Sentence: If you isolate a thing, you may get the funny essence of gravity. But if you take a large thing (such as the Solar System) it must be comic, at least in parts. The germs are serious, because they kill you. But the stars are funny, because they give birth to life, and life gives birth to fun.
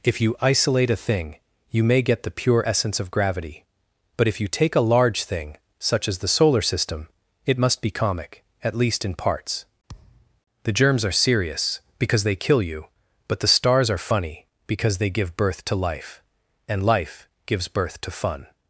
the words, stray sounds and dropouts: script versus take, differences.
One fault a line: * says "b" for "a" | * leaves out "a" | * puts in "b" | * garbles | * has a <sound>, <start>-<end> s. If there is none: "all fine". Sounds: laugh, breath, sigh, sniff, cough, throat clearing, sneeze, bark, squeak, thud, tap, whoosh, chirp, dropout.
* says "pure" for "funny"
* has a thud, 9.9-10.4 s